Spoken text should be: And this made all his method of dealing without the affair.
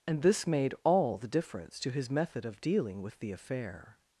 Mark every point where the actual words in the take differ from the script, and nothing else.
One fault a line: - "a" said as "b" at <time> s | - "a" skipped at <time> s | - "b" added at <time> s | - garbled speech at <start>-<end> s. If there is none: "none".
- "the difference to" added at 1.2 s
- "without" said as "with" at 3.0 s